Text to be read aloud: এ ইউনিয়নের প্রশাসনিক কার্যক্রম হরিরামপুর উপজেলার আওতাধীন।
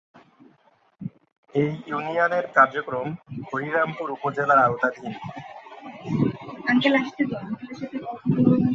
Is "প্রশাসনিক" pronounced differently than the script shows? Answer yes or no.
yes